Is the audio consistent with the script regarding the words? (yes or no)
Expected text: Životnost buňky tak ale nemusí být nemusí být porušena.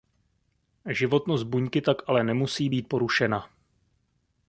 no